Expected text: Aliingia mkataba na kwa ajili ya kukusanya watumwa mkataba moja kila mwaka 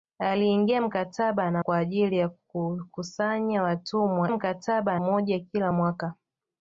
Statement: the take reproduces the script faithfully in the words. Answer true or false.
true